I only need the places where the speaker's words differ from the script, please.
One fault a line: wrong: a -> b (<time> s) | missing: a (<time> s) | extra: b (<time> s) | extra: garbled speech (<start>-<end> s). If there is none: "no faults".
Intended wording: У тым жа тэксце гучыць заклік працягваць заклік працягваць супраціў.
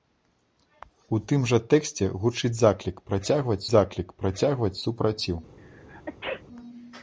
no faults